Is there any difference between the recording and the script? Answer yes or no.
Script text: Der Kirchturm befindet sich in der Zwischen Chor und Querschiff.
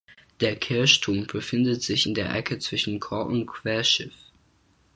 yes